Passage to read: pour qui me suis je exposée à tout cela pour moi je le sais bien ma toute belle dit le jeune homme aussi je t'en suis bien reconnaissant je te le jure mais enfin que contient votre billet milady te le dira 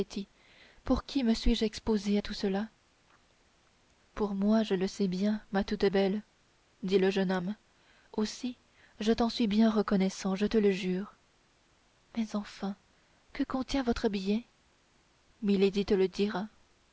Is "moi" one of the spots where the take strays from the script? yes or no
no